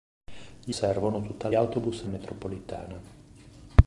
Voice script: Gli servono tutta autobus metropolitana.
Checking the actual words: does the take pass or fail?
pass